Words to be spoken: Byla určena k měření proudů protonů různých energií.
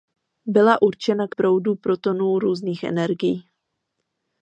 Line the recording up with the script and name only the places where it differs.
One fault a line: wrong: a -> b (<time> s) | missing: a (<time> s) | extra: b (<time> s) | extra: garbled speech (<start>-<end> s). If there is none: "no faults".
missing: měření (1.4 s)